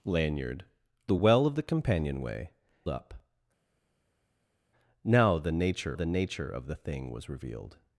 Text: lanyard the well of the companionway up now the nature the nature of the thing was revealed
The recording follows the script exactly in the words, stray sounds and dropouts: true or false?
true